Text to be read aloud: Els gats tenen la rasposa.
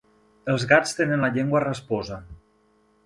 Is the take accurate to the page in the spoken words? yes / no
no